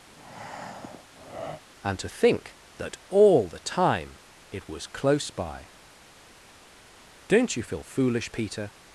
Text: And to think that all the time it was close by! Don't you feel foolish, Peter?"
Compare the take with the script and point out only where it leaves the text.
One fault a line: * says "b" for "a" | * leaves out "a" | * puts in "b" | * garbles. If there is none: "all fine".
all fine